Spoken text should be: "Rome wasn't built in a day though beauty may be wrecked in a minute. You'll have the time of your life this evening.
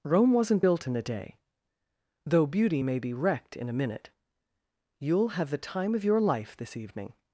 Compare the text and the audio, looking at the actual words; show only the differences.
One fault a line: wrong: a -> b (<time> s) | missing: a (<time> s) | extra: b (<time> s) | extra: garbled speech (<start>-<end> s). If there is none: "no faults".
no faults